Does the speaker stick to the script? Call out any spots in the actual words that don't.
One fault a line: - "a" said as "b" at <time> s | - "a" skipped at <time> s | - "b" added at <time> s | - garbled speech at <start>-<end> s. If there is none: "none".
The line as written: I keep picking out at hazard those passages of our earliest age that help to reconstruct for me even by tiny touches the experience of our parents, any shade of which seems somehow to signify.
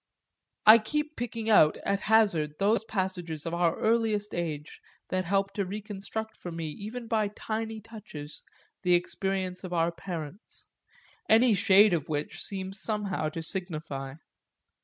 none